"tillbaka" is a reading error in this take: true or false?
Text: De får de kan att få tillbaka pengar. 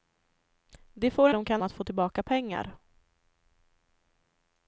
false